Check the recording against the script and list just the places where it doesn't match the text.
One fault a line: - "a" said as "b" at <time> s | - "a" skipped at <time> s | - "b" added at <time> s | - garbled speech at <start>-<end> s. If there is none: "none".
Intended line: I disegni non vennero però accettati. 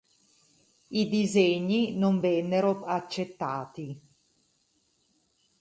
- "però" skipped at 2.8 s